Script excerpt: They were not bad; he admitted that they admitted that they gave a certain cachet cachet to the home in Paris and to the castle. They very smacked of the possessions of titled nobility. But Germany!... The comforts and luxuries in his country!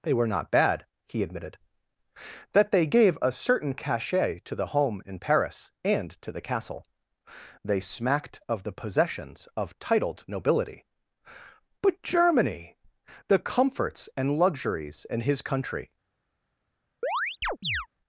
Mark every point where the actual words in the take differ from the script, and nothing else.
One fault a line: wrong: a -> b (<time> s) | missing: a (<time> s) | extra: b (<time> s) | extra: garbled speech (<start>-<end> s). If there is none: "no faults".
missing: admitted that they (2.9 s)
missing: cachet (4.4 s)
missing: very (7.8 s)